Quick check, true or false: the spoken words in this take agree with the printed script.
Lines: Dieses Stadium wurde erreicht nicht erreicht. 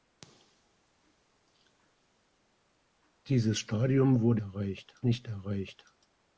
true